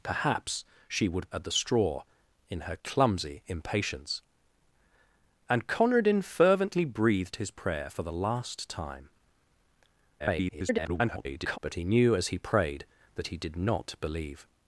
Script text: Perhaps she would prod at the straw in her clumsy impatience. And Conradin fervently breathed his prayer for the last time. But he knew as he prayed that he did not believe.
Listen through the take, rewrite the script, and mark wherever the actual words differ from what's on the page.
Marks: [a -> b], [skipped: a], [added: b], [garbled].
Perhaps she would [skipped: prod] at the straw in her clumsy impatience. And Conradin fervently breathed his prayer for the last time. [garbled] But he knew as he prayed that he did not believe.